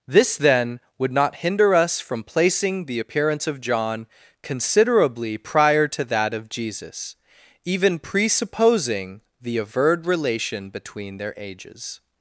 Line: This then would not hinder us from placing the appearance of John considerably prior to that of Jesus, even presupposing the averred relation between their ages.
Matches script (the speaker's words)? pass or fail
pass